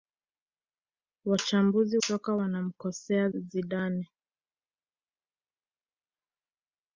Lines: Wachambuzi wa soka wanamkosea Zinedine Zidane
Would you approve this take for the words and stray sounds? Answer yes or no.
no